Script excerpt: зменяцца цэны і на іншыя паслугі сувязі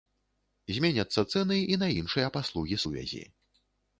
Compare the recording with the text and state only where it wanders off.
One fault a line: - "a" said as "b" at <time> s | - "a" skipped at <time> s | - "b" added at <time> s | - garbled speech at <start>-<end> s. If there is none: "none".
none